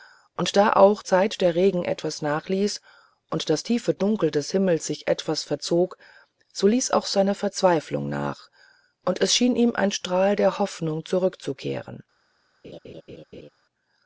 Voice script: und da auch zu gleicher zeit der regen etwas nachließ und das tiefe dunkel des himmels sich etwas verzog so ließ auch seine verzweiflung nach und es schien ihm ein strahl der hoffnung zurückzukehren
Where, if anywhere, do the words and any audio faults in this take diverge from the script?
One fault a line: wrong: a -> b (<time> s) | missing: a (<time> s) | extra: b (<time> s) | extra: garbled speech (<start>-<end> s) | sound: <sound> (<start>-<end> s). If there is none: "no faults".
missing: zu gleicher (1.0 s)
sound: laugh (12.6-13.5 s)